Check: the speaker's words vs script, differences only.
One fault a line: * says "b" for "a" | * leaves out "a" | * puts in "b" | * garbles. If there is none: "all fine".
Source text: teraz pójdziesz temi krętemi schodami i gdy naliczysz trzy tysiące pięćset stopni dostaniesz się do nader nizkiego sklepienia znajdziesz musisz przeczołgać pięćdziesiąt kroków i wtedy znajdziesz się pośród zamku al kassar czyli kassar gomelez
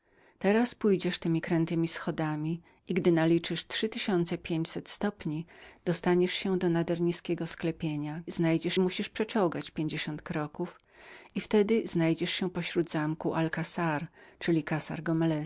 all fine